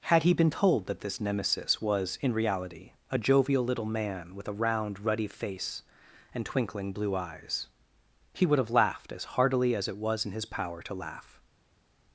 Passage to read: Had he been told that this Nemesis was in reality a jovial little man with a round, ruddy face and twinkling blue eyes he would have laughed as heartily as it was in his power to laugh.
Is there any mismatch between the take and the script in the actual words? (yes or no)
no